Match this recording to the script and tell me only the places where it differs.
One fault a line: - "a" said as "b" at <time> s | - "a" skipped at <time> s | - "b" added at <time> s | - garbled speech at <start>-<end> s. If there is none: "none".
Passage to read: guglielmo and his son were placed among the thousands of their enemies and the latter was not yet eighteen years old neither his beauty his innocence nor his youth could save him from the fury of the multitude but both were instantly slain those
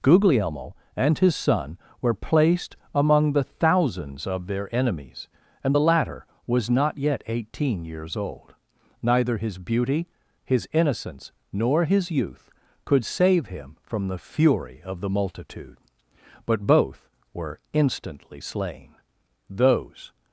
none